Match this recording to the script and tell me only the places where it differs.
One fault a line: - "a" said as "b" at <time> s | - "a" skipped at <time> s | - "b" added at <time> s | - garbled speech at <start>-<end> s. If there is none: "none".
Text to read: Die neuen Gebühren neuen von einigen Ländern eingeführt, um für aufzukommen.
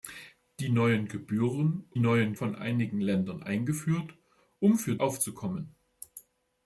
none